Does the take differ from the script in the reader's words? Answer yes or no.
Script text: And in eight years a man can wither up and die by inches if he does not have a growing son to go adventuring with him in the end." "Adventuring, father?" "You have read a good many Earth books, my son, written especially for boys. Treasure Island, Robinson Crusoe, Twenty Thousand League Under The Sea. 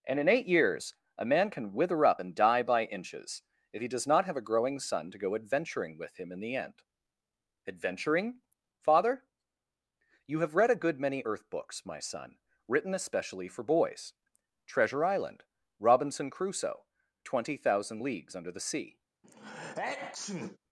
yes